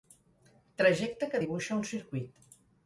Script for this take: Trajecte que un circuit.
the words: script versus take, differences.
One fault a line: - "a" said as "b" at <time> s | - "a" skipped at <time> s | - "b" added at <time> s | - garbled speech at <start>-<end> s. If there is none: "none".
- "dibuixa" added at 1.4 s